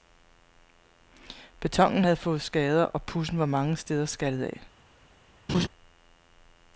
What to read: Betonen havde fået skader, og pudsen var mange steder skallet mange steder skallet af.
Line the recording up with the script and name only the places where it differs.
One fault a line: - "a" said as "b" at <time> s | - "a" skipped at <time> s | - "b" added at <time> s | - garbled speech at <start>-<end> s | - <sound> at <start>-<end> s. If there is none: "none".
- "mange steder skallet" skipped at 4.5 s
- laugh at 5.5-5.7 s